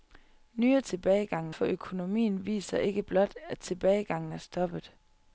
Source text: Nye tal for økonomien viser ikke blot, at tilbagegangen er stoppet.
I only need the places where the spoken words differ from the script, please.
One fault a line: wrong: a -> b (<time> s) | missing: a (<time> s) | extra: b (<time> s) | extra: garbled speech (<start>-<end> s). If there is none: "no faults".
wrong: tal -> tilbagegangen (0.8 s)